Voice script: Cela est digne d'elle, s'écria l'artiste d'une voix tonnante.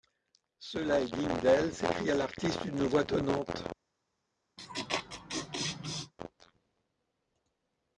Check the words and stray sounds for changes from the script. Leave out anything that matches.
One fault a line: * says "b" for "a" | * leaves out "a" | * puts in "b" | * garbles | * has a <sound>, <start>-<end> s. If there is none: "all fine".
* has a laugh, 4.6-6.1 s